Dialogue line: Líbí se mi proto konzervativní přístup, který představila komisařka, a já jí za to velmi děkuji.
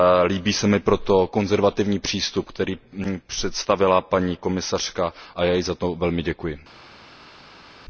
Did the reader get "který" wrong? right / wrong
right